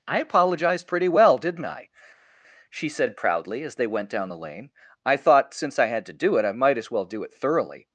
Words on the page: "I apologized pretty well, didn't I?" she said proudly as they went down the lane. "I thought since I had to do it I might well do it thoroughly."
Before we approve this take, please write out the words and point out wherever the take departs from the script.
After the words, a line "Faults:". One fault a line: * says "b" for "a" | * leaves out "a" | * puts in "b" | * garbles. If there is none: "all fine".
"I apologized pretty well, didn't I?" she said proudly as they went down the lane. "I thought since I had to do it I might as well do it thoroughly."
Faults:
* puts in "as"